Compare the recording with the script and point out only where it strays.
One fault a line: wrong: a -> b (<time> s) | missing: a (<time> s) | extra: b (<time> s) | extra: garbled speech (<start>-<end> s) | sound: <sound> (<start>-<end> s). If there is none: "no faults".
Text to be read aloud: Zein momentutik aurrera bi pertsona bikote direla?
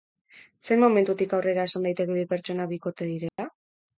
extra: esan daiteke (1.7 s)
sound: dropout (3.3-3.4 s)